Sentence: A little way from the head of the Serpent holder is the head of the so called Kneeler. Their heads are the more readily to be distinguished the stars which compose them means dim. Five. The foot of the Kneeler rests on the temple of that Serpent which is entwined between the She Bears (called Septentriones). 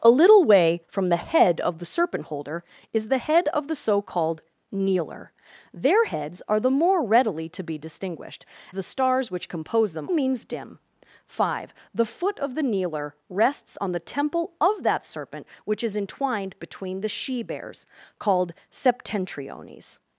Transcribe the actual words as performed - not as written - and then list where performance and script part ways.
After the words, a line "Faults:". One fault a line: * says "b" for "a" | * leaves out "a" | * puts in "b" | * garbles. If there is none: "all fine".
A little way from the head of the Serpent holder is the head of the so called Kneeler. Their heads are the more readily to be distinguished the stars which compose them means dim. Five. The foot of the Kneeler rests on the temple of that Serpent which is entwined between the She Bears (called Septentriones).
Faults:
all fine